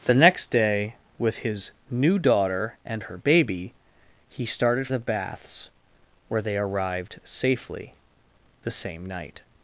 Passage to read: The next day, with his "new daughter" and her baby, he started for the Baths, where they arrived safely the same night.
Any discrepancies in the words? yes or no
yes